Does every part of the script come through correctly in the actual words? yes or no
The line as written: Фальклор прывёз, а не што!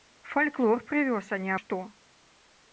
yes